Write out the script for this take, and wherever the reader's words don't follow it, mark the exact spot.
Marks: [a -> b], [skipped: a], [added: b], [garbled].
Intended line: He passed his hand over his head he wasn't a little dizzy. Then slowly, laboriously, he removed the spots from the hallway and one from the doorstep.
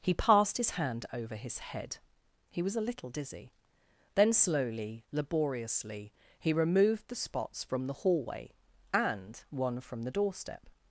He passed his hand over his head he [wasn't -> was] a little dizzy. Then slowly, laboriously, he removed the spots from the hallway and one from the doorstep.